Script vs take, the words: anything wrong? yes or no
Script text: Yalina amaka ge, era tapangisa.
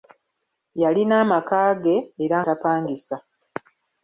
no